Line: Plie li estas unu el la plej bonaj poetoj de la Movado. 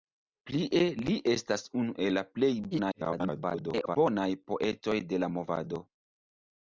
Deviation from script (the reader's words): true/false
true